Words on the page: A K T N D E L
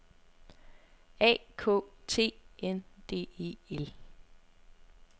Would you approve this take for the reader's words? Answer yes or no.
yes